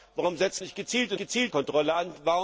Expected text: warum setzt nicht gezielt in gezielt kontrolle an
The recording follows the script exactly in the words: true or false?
true